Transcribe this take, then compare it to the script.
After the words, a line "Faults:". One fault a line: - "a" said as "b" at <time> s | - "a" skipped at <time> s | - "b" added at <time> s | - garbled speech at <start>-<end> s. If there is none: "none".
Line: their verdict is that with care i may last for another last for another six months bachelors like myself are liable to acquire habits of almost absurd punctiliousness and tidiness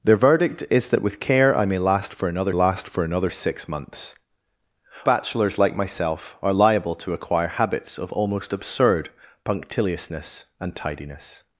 their verdict is that with care i may last for another last for another six months bachelors like myself are liable to acquire habits of almost absurd punctiliousness and tidiness
Faults:
none